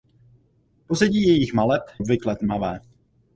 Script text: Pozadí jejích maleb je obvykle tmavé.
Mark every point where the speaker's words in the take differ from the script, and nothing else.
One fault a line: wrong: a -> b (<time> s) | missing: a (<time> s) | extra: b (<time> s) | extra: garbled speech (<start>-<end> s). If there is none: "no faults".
missing: je (1.8 s)